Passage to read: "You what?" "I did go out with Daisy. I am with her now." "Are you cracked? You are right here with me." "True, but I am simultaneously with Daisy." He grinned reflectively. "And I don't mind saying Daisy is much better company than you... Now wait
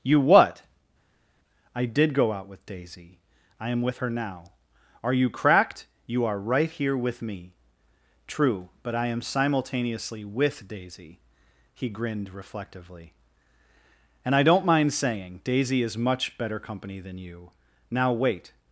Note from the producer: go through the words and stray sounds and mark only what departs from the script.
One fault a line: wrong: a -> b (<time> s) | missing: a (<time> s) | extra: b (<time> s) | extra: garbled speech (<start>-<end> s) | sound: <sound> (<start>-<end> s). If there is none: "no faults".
no faults